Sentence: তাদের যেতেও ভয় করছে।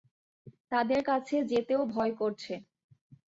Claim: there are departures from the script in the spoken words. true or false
true